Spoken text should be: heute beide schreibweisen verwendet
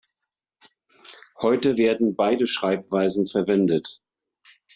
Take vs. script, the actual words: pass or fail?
fail